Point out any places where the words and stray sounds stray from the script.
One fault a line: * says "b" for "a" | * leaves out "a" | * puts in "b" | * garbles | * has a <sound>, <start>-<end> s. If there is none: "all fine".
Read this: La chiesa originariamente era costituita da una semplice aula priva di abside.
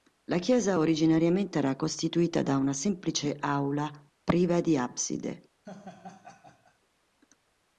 * has a laugh, 5.6-6.8 s